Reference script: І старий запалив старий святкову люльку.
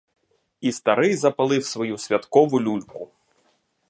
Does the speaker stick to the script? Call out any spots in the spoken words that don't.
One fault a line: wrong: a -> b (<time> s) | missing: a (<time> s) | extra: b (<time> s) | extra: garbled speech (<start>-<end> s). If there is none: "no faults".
wrong: старий -> свою (1.6 s)